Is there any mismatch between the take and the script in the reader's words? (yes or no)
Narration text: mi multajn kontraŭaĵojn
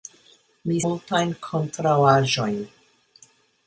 no